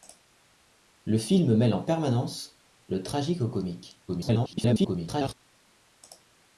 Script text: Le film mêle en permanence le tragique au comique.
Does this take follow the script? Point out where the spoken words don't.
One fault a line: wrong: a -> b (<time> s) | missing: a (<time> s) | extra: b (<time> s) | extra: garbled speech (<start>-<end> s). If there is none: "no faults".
extra: garbled speech (4.1-5.3 s)